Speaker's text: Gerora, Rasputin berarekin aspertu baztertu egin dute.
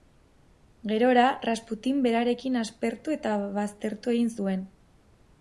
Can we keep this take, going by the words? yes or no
no